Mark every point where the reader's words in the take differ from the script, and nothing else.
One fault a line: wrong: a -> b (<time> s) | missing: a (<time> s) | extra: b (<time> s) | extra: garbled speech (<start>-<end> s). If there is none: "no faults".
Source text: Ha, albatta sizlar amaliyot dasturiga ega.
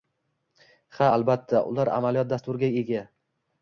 wrong: sizlar -> ular (1.7 s)